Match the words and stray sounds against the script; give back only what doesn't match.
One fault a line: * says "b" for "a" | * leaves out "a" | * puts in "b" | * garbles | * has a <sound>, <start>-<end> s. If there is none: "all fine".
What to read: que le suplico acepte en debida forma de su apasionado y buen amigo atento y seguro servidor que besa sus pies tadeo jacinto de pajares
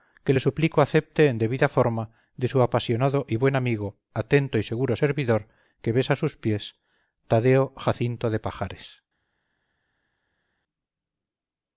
all fine